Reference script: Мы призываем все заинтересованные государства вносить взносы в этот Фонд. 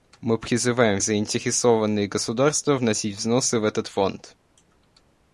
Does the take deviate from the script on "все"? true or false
true